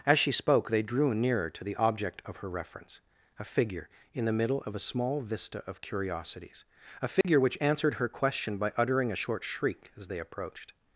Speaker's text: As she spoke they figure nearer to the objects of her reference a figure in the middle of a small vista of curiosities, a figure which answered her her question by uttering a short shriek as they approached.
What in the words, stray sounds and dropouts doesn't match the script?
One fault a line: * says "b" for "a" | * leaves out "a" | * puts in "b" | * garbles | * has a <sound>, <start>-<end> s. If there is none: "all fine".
* says "drew" for "figure"
* says "object" for "objects"
* has a dropout, 7.2-7.2 s
* leaves out "her"